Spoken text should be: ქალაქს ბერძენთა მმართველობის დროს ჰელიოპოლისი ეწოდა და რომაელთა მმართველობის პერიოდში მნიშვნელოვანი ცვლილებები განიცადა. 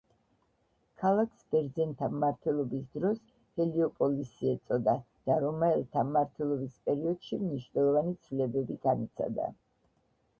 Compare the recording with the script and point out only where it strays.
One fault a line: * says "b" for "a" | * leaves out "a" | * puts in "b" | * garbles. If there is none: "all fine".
all fine